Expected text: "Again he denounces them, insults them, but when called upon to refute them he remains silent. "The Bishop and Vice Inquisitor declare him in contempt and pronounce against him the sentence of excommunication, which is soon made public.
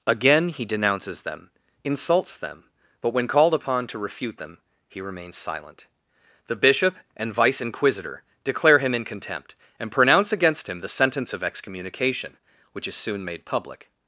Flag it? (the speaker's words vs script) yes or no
no